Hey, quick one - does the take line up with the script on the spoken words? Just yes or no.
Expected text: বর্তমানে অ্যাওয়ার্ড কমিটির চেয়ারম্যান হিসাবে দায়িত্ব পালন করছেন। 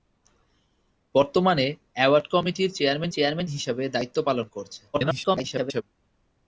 no